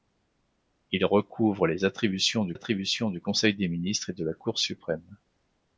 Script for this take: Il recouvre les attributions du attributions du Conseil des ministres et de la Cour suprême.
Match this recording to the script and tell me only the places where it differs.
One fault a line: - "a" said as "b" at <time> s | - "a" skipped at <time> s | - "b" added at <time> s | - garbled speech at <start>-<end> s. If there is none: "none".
none